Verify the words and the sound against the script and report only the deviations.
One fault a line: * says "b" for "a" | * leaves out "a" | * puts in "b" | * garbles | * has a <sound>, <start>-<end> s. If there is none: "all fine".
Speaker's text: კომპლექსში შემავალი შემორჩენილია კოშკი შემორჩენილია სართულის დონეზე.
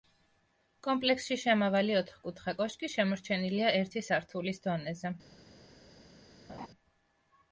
* says "ოთხკუთხა" for "შემორჩენილია"
* puts in "ერთი"
* has a laugh, 6.5-6.7 s